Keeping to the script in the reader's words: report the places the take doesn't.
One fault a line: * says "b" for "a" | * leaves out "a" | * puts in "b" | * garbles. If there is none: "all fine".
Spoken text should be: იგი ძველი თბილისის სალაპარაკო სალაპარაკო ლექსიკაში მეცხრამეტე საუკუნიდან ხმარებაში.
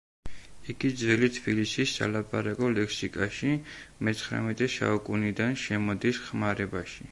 * leaves out "სალაპარაკო"
* puts in "შემოდის"